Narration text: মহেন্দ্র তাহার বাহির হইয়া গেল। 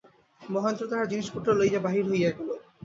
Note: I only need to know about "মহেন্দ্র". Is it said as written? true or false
true